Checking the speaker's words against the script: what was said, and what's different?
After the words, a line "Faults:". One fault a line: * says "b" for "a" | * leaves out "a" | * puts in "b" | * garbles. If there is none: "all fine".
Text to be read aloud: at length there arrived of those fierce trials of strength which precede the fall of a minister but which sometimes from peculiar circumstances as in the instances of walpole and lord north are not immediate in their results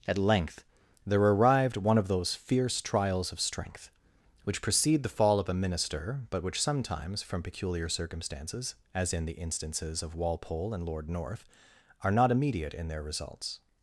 at length there arrived one of those fierce trials of strength which precede the fall of a minister but which sometimes from peculiar circumstances as in the instances of walpole and lord north are not immediate in their results
Faults:
* puts in "one"